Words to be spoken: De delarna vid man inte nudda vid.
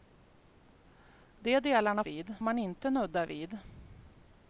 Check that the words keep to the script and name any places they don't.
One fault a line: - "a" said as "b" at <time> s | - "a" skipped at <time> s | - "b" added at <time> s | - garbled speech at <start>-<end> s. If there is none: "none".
none